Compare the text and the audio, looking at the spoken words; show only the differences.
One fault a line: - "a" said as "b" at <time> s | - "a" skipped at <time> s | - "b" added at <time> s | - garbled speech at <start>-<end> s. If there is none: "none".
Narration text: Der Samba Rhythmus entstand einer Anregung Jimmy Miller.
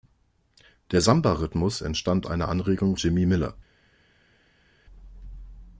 none